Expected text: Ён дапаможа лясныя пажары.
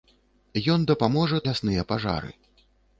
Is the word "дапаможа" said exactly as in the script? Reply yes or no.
yes